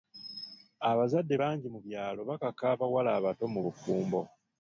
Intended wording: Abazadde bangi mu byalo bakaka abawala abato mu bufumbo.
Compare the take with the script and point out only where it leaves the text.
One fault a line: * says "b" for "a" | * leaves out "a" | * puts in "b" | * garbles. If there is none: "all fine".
all fine